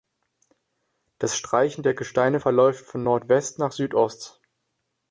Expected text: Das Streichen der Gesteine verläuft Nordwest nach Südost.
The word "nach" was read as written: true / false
true